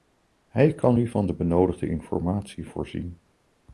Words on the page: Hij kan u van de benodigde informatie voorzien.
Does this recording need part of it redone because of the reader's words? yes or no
no